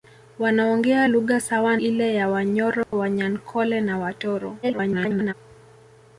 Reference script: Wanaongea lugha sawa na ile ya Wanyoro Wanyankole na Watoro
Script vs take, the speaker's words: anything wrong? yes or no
yes